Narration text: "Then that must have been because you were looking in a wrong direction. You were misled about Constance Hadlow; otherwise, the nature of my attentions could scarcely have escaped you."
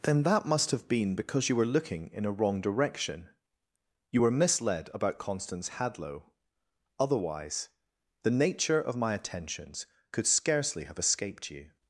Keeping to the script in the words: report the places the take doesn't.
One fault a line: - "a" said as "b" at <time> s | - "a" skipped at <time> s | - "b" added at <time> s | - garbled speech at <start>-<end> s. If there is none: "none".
none